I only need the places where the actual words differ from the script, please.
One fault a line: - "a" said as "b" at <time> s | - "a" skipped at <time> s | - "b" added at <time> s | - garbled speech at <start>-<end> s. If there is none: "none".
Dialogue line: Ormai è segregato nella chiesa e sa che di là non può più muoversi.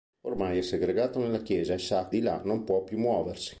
- "che" skipped at 2.1 s